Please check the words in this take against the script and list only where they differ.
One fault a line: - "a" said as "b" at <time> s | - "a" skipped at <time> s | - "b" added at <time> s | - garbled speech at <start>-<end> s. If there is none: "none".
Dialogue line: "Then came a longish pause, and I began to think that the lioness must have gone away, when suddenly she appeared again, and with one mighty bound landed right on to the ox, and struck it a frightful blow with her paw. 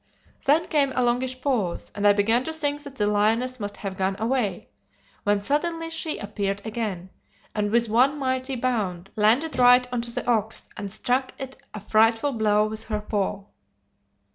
none